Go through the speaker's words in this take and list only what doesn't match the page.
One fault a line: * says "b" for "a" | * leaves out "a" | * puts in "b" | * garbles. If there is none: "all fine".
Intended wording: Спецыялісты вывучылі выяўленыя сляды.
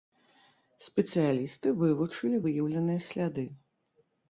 all fine